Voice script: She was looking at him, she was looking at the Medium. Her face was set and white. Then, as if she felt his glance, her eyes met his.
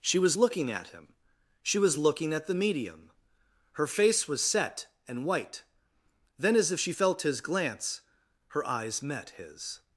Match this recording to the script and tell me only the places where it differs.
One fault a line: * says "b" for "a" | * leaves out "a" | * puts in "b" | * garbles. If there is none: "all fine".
all fine